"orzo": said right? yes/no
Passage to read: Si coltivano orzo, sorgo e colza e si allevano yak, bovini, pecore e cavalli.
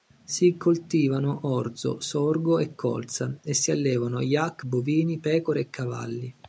yes